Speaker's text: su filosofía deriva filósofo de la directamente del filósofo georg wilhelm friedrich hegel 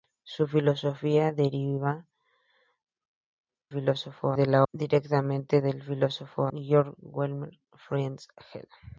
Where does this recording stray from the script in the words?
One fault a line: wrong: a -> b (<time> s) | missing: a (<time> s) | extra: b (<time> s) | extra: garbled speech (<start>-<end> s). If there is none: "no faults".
no faults